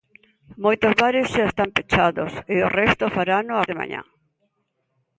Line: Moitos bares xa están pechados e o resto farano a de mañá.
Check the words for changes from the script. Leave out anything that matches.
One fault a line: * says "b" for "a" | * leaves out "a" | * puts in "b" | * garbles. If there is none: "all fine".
all fine